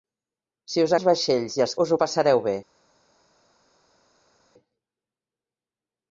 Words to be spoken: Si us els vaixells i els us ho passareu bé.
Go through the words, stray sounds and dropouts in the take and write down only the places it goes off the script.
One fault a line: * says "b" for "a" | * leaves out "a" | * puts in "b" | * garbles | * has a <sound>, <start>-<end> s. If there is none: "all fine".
all fine